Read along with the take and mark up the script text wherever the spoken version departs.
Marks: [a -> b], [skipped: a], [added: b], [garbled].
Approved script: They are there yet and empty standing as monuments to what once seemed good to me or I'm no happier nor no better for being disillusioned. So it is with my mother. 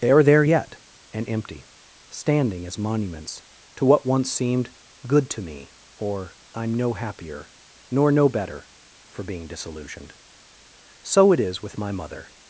They are there yet and empty standing as monuments to what once seemed good to me or I'm no happier nor no better for being disillusioned. So it is with my mother.